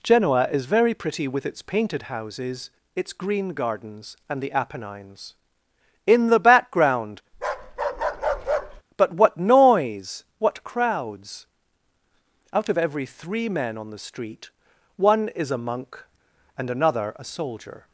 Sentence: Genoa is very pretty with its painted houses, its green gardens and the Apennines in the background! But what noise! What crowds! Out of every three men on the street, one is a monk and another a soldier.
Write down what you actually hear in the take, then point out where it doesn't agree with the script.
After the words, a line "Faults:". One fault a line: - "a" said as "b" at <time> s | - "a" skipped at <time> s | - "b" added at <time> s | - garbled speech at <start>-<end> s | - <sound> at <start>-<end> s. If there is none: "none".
Genoa is very pretty with its painted houses, its green gardens and the Apennines in the background! But what noise! What crowds! Out of every three men on the street, one is a monk and another a soldier.
Faults:
- bark at 7.3-8.8 s